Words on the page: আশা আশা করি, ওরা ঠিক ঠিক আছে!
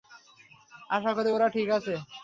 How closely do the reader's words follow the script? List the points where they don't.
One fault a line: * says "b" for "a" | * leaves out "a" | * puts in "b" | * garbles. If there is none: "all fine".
* leaves out "আশা"
* leaves out "ঠিক"